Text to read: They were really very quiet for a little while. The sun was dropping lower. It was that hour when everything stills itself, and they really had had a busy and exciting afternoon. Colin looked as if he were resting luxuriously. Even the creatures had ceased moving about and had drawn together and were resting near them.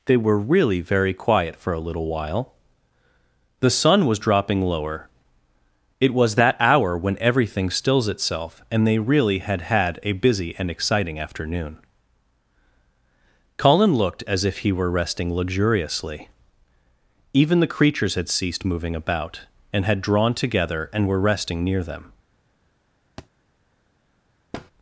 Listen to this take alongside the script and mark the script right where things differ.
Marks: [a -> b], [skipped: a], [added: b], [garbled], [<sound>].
They were really very quiet for a little while. The sun was dropping lower. It was that hour when everything stills itself, and they really had had a busy and exciting afternoon. Colin looked as if he were resting luxuriously. Even the creatures had ceased moving about and had drawn together and were resting near them. [thud] [thud]